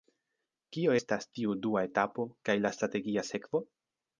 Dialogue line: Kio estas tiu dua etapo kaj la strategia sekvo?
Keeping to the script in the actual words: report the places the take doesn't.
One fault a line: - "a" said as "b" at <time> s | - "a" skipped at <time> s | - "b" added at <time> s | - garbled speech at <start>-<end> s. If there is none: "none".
none